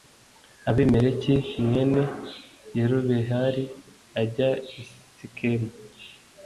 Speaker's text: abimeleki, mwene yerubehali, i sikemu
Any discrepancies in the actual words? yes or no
yes